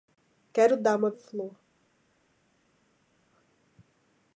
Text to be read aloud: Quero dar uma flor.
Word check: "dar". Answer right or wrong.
right